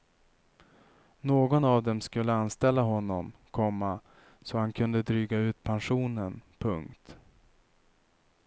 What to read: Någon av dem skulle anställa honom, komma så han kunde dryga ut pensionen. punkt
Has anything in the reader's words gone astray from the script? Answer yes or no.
no